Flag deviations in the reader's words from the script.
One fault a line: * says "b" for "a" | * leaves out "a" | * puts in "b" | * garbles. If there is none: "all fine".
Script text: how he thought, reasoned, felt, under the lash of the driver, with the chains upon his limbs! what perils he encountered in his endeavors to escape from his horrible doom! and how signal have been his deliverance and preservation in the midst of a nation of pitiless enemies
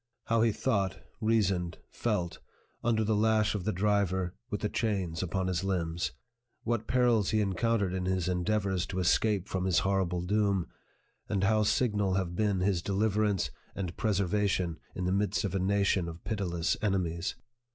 all fine